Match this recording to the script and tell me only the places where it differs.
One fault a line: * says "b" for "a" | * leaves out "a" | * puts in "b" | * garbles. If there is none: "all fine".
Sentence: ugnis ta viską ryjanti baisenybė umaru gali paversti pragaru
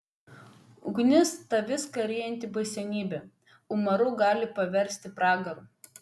all fine